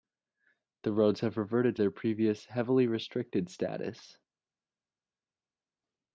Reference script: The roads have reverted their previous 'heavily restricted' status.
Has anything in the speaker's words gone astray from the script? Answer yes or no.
no